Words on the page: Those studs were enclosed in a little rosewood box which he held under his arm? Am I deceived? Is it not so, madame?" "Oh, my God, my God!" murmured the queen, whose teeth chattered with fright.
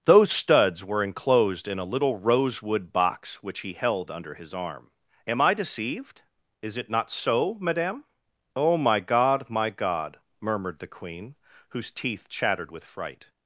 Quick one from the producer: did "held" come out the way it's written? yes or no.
yes